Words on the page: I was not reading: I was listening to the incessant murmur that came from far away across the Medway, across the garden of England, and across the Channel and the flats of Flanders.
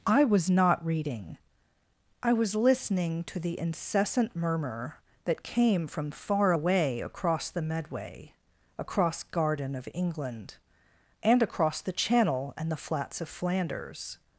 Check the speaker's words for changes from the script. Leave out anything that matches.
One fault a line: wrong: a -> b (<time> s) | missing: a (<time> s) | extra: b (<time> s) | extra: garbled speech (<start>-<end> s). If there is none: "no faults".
missing: the (9.2 s)